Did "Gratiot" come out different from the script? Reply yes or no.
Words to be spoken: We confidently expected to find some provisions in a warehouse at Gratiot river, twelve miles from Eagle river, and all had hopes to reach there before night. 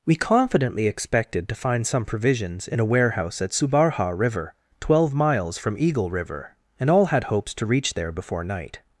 yes